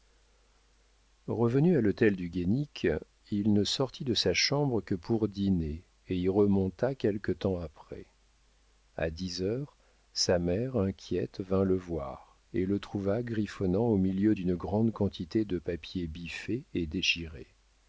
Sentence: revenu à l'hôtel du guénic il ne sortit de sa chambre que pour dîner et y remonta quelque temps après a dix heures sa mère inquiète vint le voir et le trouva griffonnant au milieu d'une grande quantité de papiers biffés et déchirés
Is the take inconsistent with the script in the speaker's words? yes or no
no